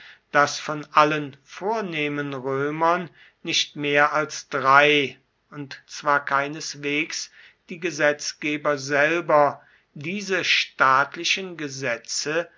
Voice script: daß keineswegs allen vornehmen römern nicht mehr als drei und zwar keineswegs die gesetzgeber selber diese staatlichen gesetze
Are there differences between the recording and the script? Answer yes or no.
yes